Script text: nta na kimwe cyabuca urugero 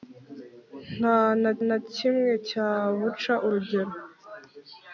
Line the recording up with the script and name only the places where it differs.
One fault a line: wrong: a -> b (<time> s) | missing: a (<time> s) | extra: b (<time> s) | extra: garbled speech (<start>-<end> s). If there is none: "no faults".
extra: na (1.7 s)